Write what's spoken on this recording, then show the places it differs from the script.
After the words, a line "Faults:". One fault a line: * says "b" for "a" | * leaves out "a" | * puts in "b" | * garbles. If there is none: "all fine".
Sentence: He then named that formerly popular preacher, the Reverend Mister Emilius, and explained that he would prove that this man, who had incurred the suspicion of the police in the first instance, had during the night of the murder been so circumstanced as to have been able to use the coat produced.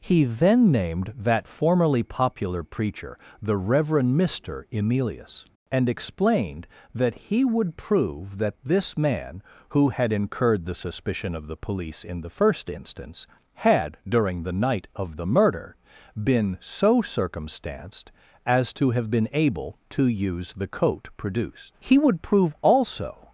He then named that formerly popular preacher, the Reverend Mister Emilius, and explained that he would prove that this man, who had incurred the suspicion of the police in the first instance, had during the night of the murder been so circumstanced as to have been able to use the coat produced. He would prove also
Faults:
* puts in "He would prove also"